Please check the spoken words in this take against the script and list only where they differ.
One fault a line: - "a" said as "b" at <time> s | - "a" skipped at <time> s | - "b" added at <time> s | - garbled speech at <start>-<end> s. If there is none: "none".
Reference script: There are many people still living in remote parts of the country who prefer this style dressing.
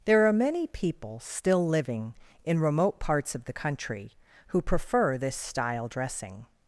none